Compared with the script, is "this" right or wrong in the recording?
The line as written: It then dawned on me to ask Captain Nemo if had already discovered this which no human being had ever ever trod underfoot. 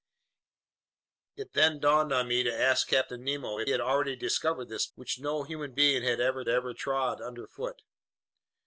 right